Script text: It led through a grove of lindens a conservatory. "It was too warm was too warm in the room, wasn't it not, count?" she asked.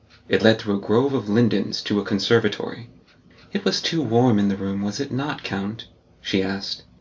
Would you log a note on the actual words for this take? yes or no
yes